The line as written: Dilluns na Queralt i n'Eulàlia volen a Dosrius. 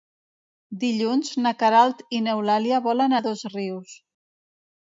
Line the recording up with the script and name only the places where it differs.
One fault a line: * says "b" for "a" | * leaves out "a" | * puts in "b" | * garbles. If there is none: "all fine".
all fine